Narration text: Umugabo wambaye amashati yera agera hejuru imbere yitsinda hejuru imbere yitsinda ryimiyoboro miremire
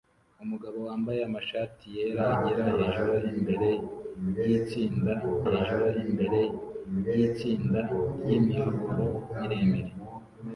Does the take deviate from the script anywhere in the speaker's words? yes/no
no